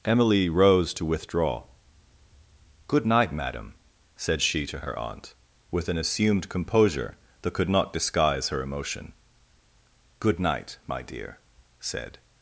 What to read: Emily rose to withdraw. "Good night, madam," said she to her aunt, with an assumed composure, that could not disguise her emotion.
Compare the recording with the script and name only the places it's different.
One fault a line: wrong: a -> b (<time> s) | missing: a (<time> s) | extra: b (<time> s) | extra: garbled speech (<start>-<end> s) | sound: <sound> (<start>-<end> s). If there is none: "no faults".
extra: Good night my dear said (10.2 s)